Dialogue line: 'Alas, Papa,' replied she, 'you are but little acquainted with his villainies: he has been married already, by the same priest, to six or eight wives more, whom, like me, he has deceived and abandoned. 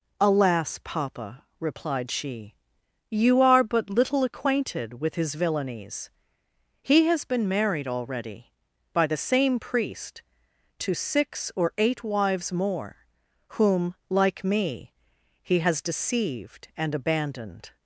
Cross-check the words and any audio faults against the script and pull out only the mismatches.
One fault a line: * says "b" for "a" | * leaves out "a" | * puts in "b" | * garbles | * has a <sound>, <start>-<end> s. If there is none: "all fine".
all fine